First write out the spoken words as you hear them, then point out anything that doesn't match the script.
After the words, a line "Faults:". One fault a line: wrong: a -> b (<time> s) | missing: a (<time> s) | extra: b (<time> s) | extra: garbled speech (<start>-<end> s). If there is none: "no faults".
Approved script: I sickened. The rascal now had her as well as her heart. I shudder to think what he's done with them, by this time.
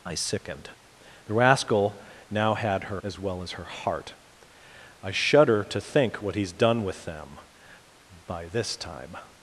I sickened. The rascal now had her as well as her heart. I shudder to think what he's done with them, by this time.
Faults:
no faults